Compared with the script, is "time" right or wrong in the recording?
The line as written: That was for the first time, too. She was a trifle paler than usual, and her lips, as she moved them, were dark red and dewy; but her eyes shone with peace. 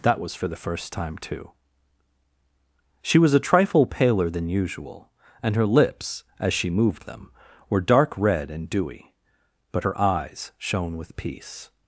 right